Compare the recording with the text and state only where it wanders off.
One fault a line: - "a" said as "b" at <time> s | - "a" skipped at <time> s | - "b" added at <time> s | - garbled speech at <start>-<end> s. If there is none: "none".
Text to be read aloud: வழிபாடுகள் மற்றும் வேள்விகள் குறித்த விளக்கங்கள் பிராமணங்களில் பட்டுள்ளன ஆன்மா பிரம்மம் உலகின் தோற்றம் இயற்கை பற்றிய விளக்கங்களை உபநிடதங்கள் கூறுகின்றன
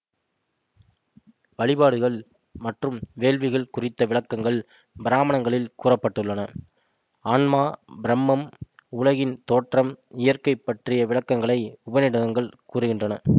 - "கூற" added at 5.8 s